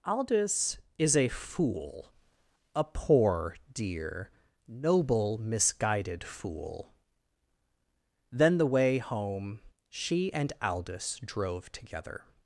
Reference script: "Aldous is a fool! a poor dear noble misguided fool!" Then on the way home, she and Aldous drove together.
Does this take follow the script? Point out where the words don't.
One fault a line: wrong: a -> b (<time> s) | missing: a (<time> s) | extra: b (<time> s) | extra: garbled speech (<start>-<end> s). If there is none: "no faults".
missing: on (8.6 s)